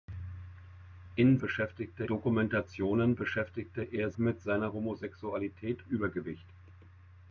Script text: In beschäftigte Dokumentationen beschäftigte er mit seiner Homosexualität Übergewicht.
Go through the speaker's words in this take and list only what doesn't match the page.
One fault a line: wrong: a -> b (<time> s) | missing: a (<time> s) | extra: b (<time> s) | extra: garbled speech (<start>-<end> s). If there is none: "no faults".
no faults